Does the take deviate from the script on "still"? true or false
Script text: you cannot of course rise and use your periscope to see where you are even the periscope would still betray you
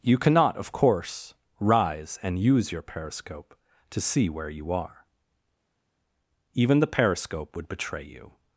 true